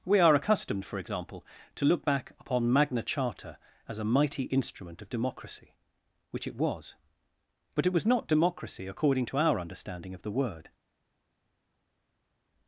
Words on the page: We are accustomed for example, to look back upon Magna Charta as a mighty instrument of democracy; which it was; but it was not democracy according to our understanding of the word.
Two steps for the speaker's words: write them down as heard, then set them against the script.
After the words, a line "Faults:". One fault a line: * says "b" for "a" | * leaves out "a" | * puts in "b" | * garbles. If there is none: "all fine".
We are accustomed for example, to look back upon Magna Charta as a mighty instrument of democracy; which it was; but it was not democracy according to our understanding of the word.
Faults:
all fine